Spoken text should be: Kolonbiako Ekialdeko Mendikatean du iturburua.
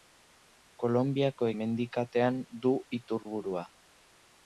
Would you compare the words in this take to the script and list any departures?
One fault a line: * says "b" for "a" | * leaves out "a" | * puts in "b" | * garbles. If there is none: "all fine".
* leaves out "Ekialdeko"